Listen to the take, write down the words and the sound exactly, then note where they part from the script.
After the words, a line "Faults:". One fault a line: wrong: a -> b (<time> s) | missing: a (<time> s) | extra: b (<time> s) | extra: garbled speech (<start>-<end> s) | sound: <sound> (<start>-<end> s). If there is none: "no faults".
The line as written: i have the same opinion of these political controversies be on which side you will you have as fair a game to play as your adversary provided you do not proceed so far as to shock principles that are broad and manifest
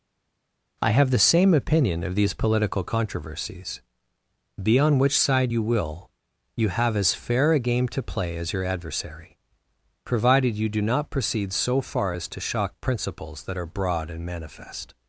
i have the same opinion of these political controversies be on which side you will you have as fair a game to play as your adversary provided you do not proceed so far as to shock principles that are broad and manifest
Faults:
no faults